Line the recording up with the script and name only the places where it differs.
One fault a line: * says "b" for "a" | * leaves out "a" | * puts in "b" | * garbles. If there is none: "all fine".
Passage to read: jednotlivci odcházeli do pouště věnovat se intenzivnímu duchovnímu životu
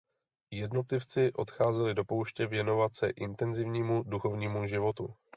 all fine